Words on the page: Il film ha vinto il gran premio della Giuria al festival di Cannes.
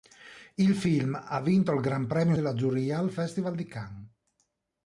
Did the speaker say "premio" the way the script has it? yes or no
yes